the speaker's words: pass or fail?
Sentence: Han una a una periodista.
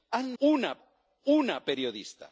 pass